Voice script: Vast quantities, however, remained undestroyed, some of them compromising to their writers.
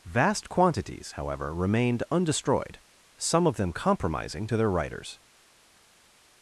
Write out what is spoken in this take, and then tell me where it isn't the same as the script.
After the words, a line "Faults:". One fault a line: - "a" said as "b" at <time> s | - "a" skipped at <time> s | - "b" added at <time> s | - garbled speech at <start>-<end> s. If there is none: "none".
Vast quantities, however, remained undestroyed, some of them compromising to their writers.
Faults:
none